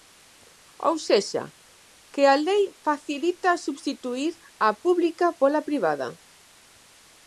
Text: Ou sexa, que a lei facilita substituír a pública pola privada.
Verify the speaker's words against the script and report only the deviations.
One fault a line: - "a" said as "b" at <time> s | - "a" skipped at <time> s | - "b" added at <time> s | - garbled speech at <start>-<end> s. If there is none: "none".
none